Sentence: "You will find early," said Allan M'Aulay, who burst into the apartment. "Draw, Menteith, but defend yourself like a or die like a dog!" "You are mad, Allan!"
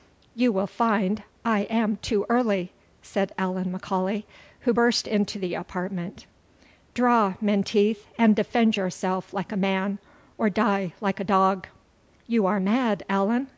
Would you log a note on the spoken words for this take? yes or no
yes